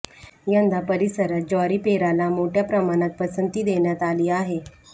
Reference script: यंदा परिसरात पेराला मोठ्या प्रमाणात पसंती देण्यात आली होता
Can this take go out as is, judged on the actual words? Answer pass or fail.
fail